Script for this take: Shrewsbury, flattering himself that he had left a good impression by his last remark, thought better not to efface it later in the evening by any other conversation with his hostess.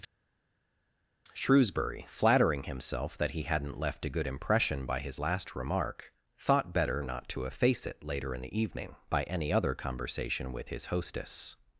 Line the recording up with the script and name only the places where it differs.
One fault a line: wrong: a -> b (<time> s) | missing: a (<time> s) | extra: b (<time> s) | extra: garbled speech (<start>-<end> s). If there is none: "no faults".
wrong: had -> hadn't (3.4 s)